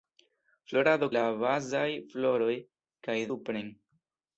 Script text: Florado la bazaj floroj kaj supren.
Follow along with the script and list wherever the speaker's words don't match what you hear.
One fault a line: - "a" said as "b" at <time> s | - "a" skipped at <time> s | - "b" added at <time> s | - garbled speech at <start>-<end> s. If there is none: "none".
none